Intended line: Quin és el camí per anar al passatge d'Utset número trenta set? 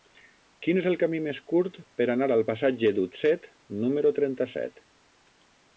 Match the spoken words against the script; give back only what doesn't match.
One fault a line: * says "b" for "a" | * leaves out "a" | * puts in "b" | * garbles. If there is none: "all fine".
* puts in "més curt"